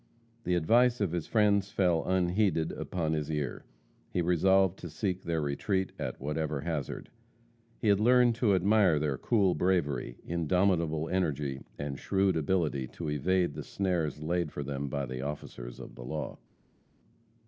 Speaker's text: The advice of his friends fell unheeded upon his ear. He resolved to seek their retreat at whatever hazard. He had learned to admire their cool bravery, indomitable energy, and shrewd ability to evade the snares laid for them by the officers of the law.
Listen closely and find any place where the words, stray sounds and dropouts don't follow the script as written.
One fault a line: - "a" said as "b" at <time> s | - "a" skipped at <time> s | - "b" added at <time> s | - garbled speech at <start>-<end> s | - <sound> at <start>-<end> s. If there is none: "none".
none